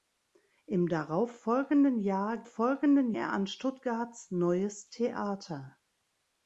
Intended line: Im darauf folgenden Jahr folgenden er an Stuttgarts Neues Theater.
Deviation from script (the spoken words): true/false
false